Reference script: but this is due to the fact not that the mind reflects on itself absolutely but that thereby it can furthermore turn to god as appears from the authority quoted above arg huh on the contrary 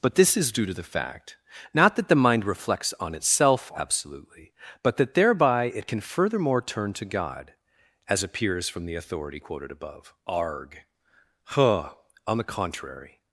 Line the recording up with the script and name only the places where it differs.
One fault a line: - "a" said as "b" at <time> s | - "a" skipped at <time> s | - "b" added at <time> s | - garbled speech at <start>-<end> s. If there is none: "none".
none